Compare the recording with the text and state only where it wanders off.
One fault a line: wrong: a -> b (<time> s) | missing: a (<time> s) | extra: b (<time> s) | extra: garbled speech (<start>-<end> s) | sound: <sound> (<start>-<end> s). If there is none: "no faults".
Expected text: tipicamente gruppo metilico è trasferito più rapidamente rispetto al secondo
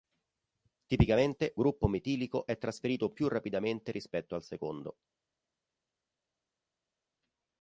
no faults